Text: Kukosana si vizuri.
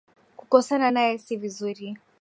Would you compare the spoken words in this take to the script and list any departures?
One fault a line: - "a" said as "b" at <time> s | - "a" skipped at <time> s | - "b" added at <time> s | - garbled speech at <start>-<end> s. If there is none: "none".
- "naye" added at 0.9 s